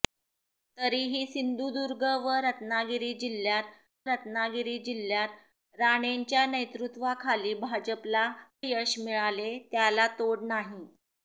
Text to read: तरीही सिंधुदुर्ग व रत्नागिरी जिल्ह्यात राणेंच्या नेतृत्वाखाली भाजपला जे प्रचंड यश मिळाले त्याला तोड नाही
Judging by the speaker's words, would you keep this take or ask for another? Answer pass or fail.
fail